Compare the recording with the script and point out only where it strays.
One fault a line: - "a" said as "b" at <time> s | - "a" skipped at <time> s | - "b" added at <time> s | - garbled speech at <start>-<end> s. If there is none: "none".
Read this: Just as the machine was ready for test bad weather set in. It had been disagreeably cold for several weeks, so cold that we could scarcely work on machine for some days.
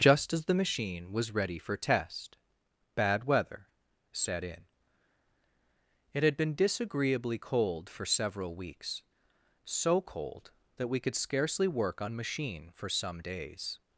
none